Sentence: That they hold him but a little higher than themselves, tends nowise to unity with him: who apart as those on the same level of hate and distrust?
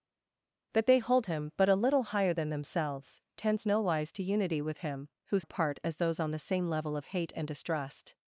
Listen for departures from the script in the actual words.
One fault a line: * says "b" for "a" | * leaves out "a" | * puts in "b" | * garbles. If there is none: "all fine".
all fine